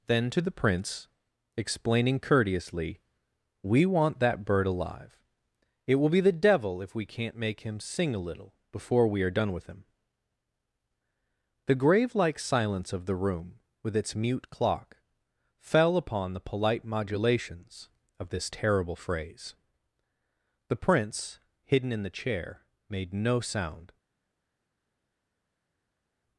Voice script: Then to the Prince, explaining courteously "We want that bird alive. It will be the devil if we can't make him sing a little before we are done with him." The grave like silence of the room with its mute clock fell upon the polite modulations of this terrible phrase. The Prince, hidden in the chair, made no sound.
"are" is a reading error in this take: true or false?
false